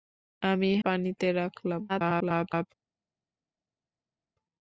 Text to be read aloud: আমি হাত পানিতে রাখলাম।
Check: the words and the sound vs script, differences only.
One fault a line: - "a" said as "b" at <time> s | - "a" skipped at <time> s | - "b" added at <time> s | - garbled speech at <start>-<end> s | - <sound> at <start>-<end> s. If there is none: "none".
- "হাত" skipped at 0.7 s
- garbled speech at 1.9-2.7 s